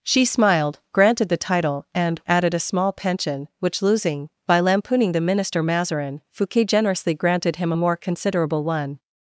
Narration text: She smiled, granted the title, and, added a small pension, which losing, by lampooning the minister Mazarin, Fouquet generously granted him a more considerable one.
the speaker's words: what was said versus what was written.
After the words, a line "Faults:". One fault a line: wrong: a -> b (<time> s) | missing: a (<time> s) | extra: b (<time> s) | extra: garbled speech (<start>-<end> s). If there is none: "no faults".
She smiled, granted the title, and, added a small pension, which losing, by lampooning the minister Mazarin, Fouquet generously granted him a more considerable one.
Faults:
no faults